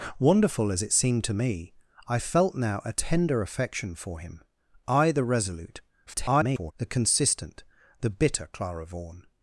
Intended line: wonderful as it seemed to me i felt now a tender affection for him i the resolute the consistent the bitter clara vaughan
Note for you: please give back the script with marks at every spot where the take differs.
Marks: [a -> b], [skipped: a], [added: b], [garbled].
wonderful as it seemed to me i felt now a tender affection for him i the resolute [garbled] the consistent the bitter clara vaughan